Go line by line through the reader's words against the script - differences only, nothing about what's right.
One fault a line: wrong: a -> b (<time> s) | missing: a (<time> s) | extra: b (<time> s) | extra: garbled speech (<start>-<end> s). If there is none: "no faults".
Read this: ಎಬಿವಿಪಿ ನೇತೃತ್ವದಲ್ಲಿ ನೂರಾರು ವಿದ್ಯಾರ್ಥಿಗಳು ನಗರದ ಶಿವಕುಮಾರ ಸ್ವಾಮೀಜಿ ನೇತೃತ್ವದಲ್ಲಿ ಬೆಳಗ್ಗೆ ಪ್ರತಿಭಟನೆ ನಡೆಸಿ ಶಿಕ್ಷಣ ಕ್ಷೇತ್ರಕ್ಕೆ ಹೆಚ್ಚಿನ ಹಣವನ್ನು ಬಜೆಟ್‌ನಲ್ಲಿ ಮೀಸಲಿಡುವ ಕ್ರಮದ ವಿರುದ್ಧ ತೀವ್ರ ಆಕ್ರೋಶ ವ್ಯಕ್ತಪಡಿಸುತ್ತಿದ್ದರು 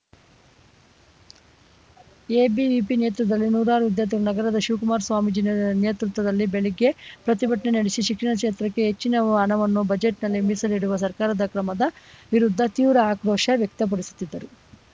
extra: ಸರ್ಕಾರದ (11.0 s)